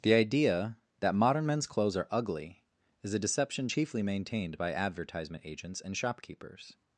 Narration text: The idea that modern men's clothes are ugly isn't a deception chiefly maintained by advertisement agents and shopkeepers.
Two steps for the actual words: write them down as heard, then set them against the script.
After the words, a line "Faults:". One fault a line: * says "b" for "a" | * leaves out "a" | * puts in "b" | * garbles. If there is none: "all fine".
The idea that modern men's clothes are ugly is a deception chiefly maintained by advertisement agents and shopkeepers.
Faults:
* says "is" for "isn't"